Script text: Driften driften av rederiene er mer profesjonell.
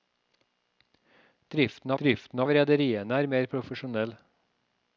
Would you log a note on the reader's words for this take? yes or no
no